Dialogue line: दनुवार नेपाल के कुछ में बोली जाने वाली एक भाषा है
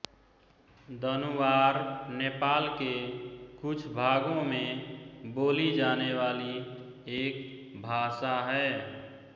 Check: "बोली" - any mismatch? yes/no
no